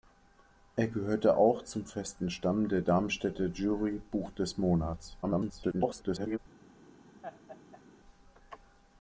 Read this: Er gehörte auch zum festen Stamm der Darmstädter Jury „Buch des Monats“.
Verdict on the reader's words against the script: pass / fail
fail